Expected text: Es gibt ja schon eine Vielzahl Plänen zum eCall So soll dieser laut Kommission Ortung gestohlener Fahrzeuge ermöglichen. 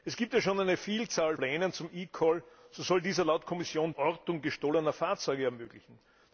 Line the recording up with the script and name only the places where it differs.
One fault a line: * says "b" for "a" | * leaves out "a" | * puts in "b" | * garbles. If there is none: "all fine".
all fine